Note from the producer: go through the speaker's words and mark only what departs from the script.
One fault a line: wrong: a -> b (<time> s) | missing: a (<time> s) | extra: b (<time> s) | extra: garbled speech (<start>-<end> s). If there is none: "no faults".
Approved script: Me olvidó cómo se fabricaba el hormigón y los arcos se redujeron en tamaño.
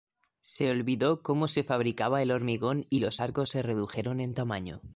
wrong: Me -> Se (0.4 s)